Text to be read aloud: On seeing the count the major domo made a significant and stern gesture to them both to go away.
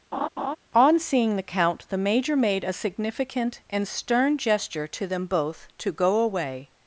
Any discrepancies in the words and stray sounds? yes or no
yes